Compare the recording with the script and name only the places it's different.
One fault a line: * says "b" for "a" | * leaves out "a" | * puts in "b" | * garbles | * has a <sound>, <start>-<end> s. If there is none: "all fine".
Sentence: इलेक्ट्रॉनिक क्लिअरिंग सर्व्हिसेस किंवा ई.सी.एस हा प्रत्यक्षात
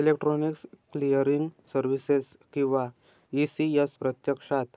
* leaves out "हा"